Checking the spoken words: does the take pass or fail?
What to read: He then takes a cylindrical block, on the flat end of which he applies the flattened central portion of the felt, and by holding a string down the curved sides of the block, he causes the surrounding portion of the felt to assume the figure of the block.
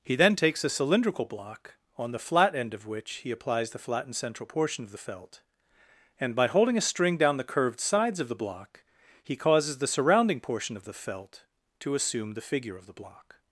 pass